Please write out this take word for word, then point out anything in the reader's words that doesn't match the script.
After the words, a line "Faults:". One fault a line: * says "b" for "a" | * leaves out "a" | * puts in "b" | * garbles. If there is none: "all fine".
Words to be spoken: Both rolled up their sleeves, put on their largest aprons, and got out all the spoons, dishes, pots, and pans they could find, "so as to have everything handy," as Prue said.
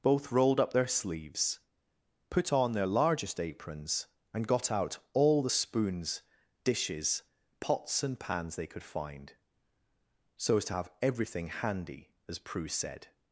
Both rolled up their sleeves, put on their largest aprons, and got out all the spoons, dishes, pots, and pans they could find, "so as to have everything handy," as Prue said.
Faults:
all fine